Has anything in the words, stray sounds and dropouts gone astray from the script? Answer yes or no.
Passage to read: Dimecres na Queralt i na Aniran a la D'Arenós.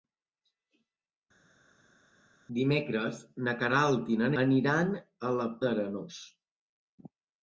no